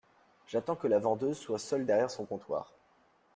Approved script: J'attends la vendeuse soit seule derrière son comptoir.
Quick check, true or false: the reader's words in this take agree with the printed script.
false